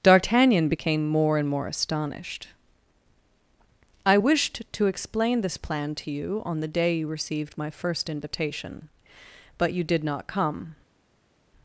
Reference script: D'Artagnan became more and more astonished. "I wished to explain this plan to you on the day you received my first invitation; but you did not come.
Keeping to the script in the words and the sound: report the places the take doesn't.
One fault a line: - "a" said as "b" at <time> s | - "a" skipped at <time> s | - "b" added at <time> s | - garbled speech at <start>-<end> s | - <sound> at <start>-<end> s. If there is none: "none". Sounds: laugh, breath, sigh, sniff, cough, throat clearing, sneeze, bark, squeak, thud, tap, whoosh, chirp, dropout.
none